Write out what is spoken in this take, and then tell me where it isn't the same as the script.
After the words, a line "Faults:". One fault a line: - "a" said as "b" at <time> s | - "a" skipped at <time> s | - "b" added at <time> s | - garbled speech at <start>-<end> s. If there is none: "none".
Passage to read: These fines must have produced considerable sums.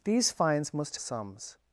These fines must sums.
Faults:
- "have produced considerable" skipped at 1.0 s